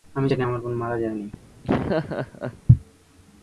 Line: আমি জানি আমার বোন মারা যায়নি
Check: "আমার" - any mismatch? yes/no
no